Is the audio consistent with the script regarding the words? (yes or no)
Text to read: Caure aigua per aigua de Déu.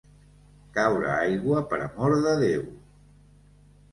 no